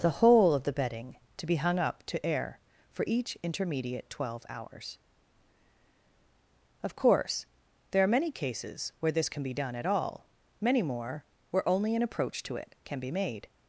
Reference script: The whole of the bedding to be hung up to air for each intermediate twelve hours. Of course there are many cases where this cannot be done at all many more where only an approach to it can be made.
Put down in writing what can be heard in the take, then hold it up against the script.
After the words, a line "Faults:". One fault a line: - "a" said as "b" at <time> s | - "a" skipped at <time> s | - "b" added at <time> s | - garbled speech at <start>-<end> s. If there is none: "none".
The whole of the bedding to be hung up to air for each intermediate twelve hours. Of course there are many cases where this can be done at all many more where only an approach to it can be made.
Faults:
- "cannot" said as "can" at 9.3 s